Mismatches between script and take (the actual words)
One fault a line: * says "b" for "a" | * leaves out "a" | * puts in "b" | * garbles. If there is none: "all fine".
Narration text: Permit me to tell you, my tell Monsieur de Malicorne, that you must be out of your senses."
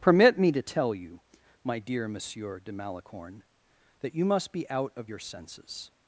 * says "dear" for "tell"